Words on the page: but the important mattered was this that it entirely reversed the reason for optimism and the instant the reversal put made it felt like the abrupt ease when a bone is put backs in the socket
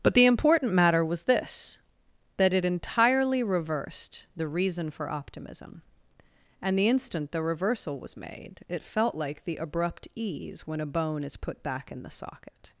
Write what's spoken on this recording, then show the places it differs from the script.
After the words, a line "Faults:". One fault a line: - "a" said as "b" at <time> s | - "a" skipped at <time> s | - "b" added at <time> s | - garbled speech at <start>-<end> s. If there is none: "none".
but the important matter was this that it entirely reversed the reason for optimism and the instant the reversal was made it felt like the abrupt ease when a bone is put back in the socket
Faults:
- "mattered" said as "matter" at 0.7 s
- "put" said as "was" at 8.0 s
- "backs" said as "back" at 11.6 s